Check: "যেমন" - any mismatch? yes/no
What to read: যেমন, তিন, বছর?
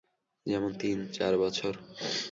no